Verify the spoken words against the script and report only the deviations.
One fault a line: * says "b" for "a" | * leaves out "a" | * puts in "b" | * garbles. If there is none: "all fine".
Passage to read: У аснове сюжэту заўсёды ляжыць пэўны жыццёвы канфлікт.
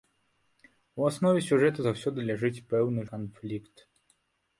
* leaves out "жыццёвы"